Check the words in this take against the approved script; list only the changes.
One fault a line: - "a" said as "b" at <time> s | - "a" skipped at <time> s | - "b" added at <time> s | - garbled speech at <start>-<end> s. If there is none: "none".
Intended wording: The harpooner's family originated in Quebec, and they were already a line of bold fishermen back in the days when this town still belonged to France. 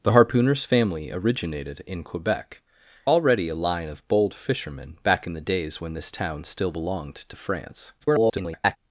- "and they were" skipped at 2.6 s
- garbled speech at 8.0-8.8 s